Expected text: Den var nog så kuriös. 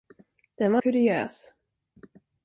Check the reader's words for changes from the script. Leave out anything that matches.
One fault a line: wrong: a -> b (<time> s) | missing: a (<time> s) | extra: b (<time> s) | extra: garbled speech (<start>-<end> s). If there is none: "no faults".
missing: nog så (0.8 s)